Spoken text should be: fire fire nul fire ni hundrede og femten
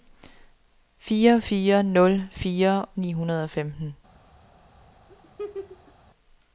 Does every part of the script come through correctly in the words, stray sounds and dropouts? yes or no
no